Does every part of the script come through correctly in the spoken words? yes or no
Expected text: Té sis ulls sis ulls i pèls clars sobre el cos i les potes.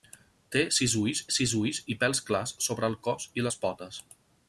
yes